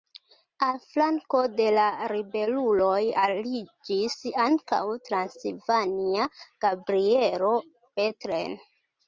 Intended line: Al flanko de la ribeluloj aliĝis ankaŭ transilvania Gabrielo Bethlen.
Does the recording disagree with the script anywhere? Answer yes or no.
no